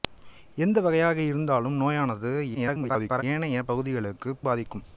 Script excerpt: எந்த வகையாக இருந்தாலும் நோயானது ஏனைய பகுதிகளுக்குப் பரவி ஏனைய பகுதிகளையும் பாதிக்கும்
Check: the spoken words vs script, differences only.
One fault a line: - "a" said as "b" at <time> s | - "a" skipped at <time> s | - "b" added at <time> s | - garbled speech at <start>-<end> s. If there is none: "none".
- garbled speech at 2.5-3.2 s
- "பரவி ஏனைய பகுதிகளையும்" skipped at 4.4 s